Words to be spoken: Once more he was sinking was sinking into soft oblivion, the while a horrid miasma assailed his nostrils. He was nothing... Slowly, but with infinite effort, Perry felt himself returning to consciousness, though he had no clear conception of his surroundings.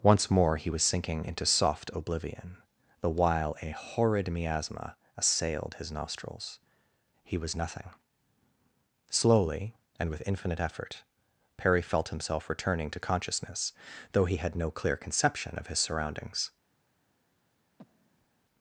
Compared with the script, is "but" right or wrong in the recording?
wrong